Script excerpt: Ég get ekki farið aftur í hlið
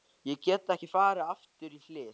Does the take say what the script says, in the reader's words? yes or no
yes